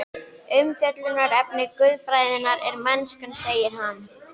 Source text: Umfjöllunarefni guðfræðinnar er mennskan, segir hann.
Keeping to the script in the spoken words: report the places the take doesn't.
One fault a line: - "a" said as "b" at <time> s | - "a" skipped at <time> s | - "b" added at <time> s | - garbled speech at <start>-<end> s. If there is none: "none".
none